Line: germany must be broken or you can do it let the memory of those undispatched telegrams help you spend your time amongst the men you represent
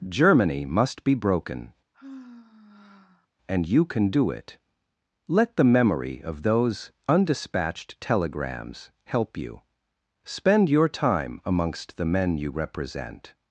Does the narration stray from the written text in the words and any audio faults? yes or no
yes